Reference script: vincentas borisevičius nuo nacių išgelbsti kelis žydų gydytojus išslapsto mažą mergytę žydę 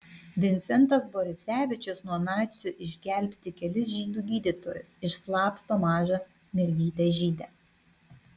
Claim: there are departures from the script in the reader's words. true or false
false